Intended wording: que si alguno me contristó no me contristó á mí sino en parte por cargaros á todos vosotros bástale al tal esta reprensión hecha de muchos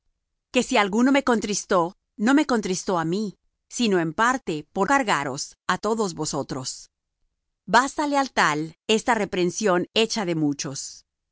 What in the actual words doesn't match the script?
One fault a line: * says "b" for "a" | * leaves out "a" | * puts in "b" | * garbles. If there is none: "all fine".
all fine